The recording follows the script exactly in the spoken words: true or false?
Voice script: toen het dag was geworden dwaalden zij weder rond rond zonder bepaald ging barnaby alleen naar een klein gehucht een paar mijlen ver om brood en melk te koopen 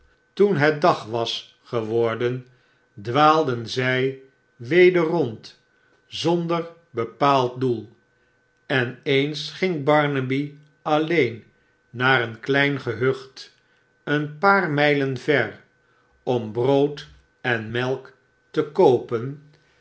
false